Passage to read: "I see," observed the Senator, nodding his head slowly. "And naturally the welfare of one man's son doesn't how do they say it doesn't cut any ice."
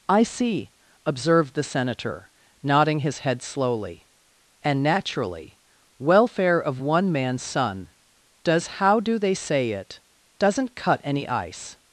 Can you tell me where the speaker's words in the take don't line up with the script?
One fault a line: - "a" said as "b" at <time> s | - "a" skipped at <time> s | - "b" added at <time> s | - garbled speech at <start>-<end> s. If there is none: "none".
- "the" skipped at 5.6 s
- "doesn't" said as "does" at 8.4 s